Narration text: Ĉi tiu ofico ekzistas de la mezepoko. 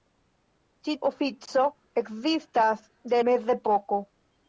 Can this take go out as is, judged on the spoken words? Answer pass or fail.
fail